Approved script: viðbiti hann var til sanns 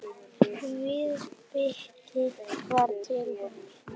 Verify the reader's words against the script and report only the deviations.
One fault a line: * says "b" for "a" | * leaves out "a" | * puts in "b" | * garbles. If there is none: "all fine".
* leaves out "hann"